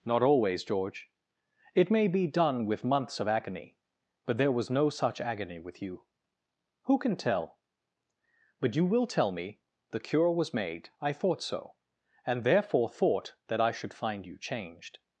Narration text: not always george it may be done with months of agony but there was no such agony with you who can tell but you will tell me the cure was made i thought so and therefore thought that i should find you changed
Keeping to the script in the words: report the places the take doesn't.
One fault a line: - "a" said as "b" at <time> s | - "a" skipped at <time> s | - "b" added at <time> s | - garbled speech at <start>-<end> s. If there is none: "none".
none